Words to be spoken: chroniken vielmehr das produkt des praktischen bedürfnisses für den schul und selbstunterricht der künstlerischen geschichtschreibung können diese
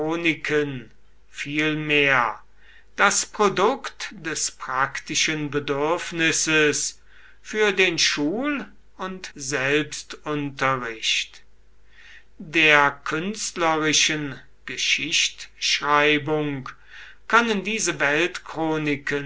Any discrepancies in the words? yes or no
no